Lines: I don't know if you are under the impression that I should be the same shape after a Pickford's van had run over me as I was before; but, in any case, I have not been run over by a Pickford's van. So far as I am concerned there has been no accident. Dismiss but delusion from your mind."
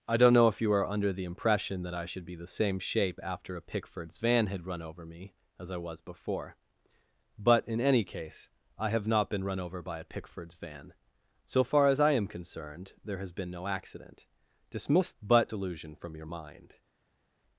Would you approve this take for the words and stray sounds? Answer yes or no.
yes